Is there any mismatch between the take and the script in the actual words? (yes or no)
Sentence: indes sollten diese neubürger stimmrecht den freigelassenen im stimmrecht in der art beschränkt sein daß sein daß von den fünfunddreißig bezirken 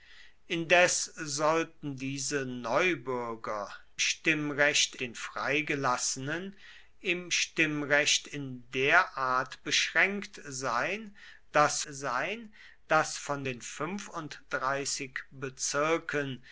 no